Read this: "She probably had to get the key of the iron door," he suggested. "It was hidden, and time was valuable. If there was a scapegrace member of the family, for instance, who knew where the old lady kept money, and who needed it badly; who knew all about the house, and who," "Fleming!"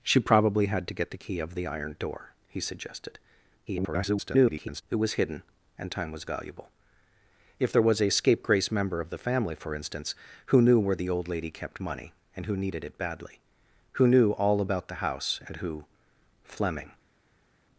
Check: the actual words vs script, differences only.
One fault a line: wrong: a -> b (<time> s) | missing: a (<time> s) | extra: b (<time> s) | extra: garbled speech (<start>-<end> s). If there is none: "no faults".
extra: garbled speech (3.7-4.8 s)